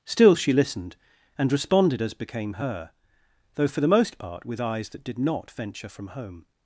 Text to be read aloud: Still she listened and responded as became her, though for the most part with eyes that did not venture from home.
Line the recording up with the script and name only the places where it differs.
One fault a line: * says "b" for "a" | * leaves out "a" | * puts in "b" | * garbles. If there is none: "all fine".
all fine